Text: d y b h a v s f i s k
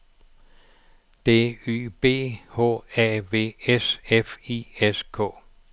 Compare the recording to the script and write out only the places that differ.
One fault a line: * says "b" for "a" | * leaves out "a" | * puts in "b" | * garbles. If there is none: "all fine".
all fine